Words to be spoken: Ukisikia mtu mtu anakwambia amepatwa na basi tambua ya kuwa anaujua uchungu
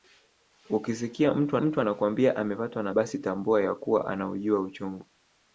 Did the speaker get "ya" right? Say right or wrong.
right